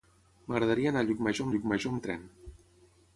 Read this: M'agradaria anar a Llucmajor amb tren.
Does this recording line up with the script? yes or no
no